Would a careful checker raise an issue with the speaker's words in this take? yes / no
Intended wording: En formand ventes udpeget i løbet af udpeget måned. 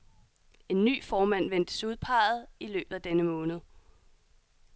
yes